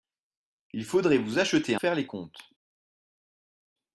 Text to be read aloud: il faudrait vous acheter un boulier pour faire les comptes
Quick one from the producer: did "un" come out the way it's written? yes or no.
no